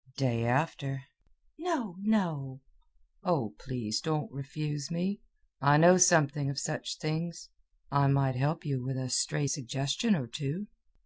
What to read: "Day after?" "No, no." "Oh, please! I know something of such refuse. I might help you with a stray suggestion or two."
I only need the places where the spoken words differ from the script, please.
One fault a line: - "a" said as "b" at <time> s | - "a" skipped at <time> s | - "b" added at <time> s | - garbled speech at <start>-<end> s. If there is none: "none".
- "don't refuse me" added at 4.0 s
- "refuse" said as "things" at 7.0 s